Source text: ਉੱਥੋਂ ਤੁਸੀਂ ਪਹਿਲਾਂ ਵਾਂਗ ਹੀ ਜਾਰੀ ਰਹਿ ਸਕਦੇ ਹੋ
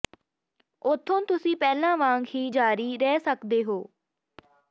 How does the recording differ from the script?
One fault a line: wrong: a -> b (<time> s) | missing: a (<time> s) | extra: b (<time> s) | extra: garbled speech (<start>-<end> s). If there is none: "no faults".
no faults